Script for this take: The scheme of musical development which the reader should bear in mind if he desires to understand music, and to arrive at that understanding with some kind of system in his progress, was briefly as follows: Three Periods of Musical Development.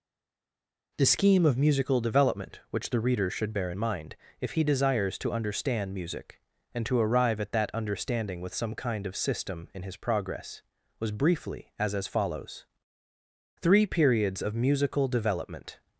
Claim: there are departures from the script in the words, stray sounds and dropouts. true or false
true